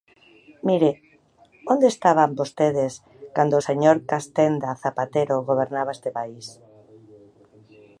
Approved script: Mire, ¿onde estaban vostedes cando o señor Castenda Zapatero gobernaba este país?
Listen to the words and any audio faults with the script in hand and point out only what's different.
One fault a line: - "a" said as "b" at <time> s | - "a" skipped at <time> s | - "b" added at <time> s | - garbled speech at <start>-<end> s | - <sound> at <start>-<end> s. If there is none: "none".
none